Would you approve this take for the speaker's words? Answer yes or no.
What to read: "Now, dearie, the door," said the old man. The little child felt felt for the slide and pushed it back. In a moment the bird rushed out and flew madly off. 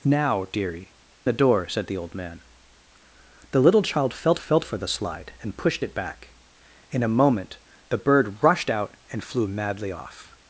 yes